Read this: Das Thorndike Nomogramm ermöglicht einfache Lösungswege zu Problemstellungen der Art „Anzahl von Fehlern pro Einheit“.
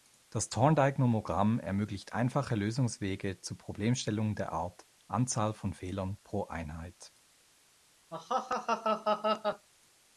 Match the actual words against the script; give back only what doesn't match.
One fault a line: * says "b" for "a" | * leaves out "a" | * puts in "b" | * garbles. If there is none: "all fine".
all fine